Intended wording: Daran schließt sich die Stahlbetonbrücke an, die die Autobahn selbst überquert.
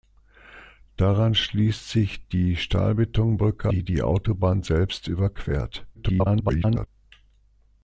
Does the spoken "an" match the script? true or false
false